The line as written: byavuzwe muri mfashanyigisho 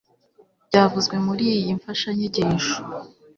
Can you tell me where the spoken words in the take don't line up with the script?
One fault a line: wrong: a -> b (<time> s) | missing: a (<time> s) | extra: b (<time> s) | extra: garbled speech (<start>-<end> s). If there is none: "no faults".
extra: iyi (1.6 s)